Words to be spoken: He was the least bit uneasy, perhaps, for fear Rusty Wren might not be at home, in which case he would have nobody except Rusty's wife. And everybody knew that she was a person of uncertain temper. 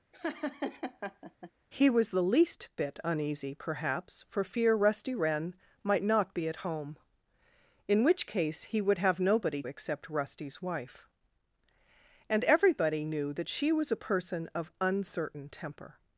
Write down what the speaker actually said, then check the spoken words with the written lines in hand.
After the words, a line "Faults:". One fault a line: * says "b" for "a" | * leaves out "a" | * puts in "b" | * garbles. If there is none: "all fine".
He was the least bit uneasy, perhaps, for fear Rusty Wren might not be at home, in which case he would have nobody except Rusty's wife. And everybody knew that she was a person of uncertain temper.
Faults:
all fine